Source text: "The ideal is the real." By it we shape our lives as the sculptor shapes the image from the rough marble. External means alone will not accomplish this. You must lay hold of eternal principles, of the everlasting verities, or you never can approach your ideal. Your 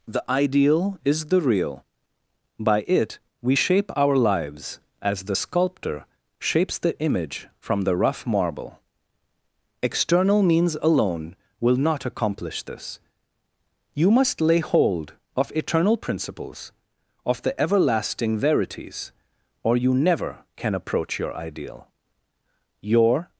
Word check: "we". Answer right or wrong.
right